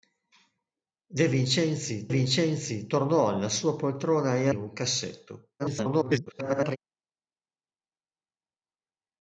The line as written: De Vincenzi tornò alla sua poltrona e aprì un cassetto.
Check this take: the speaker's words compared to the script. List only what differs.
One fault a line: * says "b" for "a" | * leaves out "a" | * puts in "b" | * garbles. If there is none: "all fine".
* puts in "Vincenzi"
* leaves out "aprì"
* garbles